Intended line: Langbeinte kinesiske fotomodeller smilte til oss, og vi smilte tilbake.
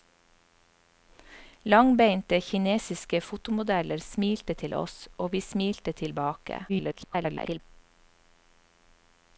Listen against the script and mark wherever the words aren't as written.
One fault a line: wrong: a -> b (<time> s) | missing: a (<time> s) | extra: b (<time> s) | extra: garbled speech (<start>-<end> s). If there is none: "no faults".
extra: garbled speech (6.7-7.6 s)